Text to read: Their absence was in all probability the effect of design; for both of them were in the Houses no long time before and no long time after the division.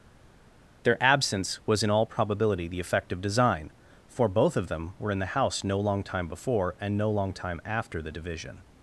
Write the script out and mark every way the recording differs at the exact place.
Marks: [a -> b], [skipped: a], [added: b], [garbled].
Their absence was in all probability the effect of design; for both of them were in the [Houses -> House] no long time before and no long time after the division.